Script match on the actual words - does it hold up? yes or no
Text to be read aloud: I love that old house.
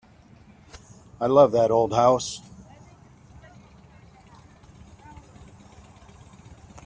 yes